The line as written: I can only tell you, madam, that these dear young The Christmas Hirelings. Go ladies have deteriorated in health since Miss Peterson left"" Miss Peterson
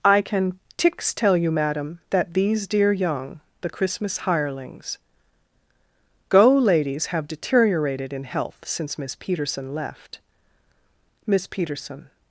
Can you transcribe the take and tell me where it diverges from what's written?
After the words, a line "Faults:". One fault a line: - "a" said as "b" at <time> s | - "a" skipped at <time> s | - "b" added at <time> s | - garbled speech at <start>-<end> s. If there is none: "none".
I can tix tell you, madam, that these dear young The Christmas Hirelings. Go ladies have deteriorated in health since Miss Peterson left"" Miss Peterson
Faults:
- "only" said as "tix" at 0.8 s